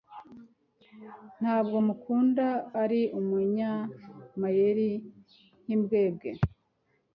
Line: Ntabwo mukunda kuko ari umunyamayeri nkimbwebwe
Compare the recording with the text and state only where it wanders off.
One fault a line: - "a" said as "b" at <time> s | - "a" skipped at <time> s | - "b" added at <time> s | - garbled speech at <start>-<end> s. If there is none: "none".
- "kuko" skipped at 2.5 s